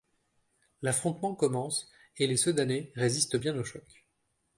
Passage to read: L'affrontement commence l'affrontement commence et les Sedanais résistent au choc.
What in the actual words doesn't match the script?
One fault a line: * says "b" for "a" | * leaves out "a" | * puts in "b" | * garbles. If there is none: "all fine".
* leaves out "l'affrontement commence"
* puts in "bien"